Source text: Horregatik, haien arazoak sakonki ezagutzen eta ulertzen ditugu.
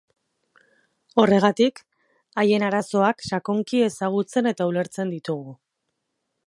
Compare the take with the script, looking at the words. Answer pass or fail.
pass